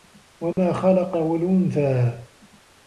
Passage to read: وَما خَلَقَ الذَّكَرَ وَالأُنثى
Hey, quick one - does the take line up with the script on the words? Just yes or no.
no